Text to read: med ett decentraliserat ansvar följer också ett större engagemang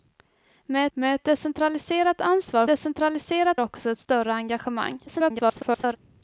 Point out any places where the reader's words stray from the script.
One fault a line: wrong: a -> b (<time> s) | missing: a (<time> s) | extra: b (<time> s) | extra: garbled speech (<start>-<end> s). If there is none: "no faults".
extra: med (0.9 s)
wrong: följer -> decentraliserat (2.6 s)
extra: garbled speech (5.1-6.0 s)